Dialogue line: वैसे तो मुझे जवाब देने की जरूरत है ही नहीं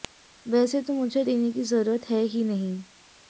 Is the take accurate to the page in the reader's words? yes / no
no